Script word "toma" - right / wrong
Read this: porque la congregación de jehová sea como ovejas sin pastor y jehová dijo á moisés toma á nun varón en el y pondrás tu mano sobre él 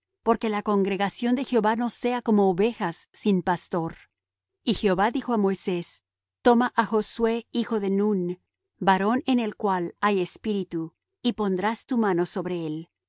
right